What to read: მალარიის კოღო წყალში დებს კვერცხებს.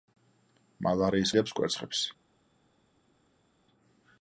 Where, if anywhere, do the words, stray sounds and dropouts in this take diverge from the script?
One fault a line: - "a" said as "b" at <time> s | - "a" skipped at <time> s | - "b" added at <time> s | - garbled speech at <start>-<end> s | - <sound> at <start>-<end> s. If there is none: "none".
- "კოღო წყალში" skipped at 1.3 s